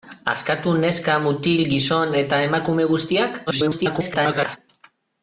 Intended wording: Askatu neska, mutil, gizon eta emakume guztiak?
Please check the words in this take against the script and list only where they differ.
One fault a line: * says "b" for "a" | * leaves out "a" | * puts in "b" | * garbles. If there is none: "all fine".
* garbles